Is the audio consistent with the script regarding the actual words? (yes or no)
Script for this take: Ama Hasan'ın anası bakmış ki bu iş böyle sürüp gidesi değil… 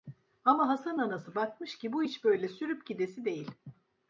yes